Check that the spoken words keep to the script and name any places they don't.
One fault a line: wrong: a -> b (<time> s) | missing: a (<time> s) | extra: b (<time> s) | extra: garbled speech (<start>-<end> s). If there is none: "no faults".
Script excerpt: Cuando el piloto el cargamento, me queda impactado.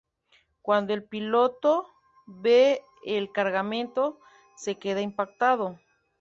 extra: ve (2.2 s)
wrong: me -> se (4.6 s)